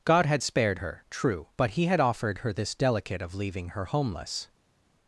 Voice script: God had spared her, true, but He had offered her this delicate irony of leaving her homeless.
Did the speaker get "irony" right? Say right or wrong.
wrong